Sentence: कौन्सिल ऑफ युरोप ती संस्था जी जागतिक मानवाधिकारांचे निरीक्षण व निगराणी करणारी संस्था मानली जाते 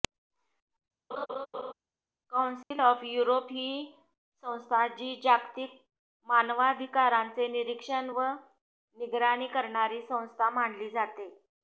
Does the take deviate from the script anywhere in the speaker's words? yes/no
yes